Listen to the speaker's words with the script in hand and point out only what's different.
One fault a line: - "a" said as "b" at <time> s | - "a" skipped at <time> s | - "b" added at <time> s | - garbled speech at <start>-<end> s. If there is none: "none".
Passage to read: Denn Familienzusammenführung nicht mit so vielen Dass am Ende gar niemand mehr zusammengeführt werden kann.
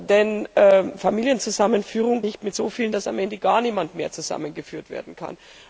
none